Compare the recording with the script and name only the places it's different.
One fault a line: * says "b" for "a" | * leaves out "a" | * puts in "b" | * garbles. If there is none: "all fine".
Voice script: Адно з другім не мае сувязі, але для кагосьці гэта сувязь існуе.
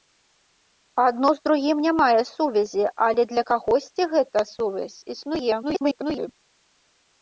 * garbles